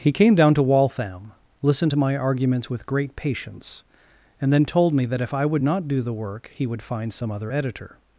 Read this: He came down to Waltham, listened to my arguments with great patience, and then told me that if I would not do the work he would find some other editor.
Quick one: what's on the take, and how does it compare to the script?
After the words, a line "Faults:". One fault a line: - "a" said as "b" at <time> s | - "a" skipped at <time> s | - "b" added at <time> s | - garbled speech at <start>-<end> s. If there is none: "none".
He came down to Waltham, listened to my arguments with great patience, and then told me that if I would not do the work he would find some other editor.
Faults:
none